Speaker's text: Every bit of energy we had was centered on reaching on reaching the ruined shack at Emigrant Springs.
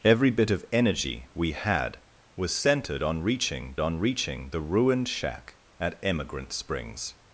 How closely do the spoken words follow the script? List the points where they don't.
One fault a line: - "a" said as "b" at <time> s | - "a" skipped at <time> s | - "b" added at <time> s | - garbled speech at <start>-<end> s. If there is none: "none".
none